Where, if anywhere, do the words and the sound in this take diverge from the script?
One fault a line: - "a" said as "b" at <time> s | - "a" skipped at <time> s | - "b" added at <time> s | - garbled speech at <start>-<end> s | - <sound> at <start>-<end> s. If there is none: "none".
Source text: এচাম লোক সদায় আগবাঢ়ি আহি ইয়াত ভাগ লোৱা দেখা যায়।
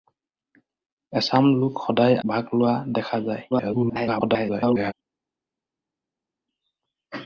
- "আগবাঢ়ি আহি ইয়াত" skipped at 2.1 s
- garbled speech at 3.5-4.9 s